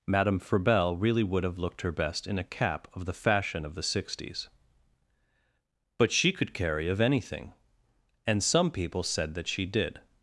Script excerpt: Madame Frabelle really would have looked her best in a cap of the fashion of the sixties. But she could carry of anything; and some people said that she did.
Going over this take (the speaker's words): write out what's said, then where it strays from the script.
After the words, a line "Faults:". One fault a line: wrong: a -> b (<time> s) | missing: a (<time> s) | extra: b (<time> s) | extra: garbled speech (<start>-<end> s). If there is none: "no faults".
Madame Frabelle really would have looked her best in a cap of the fashion of the sixties. But she could carry of anything; and some people said that she did.
Faults:
no faults